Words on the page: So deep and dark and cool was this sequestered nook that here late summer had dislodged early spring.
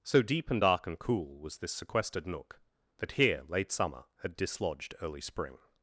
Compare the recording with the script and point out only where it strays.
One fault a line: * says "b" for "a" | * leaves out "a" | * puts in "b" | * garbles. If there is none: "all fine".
all fine